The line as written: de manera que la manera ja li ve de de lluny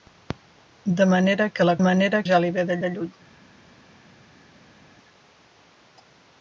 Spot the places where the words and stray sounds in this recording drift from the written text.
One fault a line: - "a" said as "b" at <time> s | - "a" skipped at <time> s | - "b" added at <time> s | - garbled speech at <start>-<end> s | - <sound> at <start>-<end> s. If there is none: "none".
none